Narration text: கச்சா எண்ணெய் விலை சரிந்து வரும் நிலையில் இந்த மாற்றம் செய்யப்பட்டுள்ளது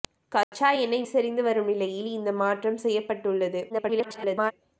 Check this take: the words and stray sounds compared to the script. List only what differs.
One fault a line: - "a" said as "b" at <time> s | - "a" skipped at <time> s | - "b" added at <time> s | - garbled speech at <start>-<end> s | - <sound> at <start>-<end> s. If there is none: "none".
- dropout at 0.4-0.5 s
- "விலை" skipped at 1.0 s
- garbled speech at 3.7-4.5 s